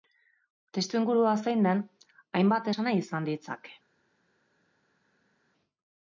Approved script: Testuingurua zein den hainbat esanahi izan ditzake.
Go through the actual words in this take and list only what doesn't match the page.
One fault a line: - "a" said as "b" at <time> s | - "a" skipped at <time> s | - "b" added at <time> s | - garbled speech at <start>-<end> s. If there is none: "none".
none